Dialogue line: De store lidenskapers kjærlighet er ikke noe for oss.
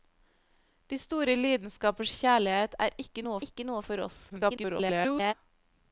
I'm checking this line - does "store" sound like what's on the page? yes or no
yes